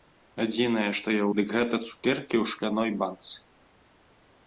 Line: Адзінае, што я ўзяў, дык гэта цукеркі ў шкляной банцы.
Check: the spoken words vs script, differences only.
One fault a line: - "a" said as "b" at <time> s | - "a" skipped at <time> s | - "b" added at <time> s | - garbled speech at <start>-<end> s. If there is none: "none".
- "ўзяў" skipped at 1.3 s